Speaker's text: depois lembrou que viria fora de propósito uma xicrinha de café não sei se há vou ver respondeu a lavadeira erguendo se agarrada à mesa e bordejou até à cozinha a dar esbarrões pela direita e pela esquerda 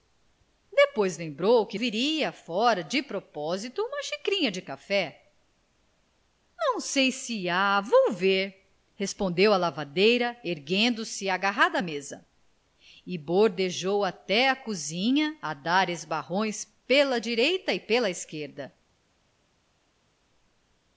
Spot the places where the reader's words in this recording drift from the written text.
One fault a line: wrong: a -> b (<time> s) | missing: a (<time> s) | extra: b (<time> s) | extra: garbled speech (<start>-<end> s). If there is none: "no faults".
no faults